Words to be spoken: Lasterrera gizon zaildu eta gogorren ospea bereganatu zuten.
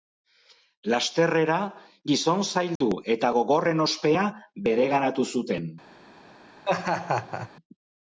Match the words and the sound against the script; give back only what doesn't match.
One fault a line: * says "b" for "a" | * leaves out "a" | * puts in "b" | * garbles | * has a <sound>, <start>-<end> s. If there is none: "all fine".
* has a dropout, 2.8-2.8 s
* has a laugh, 6.6-7.5 s